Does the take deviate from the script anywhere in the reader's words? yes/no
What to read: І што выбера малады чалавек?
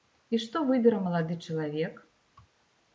no